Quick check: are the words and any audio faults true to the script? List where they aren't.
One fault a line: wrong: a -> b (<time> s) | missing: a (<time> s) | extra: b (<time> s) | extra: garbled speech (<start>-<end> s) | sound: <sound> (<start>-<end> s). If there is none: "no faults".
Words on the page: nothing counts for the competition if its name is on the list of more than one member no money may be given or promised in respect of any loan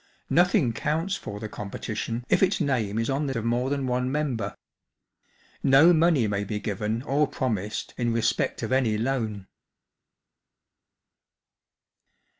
missing: list (3.4 s)